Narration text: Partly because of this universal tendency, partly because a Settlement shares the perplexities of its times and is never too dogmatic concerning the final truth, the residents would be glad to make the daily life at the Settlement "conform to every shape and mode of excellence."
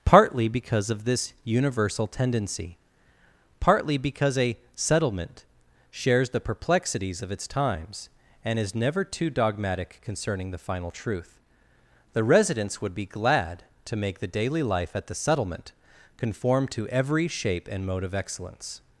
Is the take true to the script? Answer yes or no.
yes